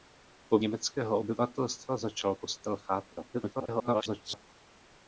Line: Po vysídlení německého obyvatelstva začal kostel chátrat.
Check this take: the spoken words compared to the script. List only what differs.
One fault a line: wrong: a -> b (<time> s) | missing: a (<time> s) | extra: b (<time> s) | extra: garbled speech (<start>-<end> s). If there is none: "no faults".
missing: vysídlení (0.6 s)
extra: garbled speech (3.3-4.4 s)